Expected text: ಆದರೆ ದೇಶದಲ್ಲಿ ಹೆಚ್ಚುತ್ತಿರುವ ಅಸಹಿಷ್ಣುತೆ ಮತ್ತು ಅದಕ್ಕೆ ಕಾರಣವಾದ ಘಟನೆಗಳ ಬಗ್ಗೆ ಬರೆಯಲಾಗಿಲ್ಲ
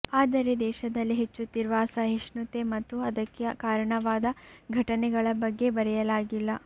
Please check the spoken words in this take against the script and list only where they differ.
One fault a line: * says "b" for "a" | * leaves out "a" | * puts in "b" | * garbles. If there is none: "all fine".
all fine